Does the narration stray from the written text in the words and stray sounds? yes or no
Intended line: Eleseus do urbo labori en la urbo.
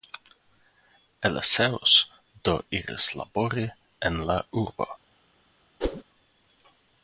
yes